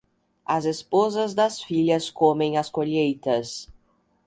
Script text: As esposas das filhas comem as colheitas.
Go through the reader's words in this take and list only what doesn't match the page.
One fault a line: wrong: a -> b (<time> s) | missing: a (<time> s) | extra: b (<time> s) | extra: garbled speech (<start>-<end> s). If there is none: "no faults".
no faults